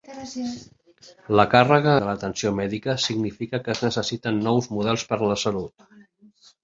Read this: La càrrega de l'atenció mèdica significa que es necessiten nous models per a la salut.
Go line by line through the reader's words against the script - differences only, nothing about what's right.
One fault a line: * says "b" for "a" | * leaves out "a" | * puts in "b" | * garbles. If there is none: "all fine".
all fine